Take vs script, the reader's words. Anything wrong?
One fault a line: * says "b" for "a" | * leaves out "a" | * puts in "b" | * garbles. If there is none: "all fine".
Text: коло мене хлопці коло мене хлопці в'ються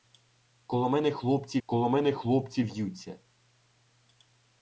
all fine